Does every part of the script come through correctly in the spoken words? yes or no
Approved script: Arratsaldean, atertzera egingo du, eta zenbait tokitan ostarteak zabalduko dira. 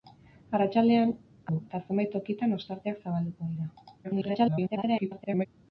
no